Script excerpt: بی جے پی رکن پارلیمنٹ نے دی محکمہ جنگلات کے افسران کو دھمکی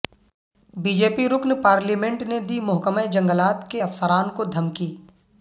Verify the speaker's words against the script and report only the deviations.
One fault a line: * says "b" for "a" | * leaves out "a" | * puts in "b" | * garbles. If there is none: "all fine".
all fine